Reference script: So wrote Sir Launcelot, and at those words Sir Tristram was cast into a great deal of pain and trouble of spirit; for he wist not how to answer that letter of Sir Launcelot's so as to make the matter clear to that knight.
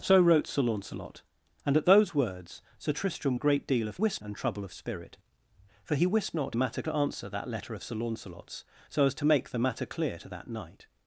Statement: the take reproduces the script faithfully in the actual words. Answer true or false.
false